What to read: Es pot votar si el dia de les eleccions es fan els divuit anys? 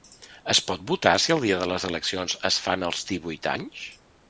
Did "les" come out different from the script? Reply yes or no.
no